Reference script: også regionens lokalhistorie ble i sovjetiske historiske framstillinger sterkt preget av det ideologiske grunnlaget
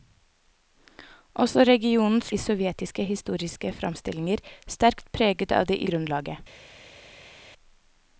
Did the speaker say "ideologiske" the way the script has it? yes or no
no